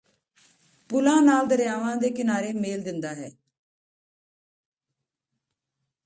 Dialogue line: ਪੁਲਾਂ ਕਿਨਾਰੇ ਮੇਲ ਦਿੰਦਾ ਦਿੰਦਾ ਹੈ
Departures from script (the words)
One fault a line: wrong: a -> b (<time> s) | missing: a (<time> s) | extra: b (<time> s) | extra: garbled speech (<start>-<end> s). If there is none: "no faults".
extra: ਨਾਲ ਦਰਿਆਵਾਂ ਦੇ (1.2 s)
missing: ਦਿੰਦਾ (3.1 s)